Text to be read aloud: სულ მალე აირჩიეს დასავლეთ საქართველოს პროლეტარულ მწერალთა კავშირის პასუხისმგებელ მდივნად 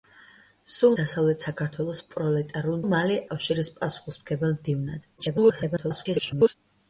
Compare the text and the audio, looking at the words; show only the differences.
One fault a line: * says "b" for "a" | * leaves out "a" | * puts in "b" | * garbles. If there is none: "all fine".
* leaves out "მალე აირჩიეს"
* says "მალე" for "მწერალთა"
* garbles